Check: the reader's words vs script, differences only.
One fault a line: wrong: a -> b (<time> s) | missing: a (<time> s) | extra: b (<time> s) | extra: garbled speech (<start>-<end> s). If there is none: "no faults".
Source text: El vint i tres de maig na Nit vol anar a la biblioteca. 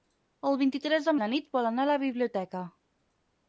missing: maig (1.1 s)